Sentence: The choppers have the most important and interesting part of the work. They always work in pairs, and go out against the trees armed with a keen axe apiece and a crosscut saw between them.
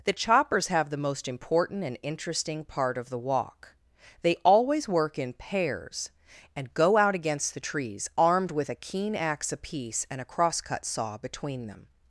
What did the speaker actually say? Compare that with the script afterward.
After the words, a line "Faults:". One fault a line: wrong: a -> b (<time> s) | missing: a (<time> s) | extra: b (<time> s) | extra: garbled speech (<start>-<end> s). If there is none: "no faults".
The choppers have the most important and interesting part of the walk. They always work in pairs, and go out against the trees armed with a keen axe apiece and a crosscut saw between them.
Faults:
wrong: work -> walk (3.2 s)